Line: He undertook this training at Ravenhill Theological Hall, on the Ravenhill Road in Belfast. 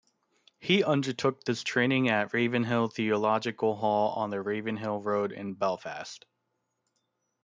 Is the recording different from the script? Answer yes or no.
no